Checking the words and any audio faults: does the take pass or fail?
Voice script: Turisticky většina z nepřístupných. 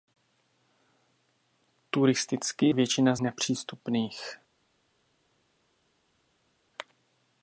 pass